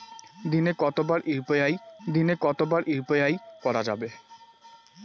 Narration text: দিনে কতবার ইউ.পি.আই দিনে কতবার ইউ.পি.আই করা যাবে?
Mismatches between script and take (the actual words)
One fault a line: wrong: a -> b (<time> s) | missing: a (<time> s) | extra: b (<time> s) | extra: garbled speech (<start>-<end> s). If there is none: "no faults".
no faults